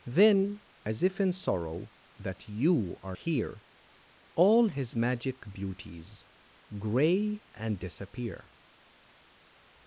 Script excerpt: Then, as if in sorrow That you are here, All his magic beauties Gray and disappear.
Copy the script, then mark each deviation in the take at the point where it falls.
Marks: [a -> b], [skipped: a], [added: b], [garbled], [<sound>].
Then, as if in sorrow That you are here, All his magic beauties Gray and disappear.